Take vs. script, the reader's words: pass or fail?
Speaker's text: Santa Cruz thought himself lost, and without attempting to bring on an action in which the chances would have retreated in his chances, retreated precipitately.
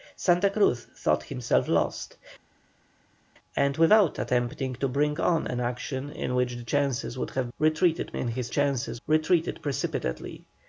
pass